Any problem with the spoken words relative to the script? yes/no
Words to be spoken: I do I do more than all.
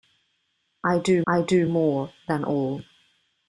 no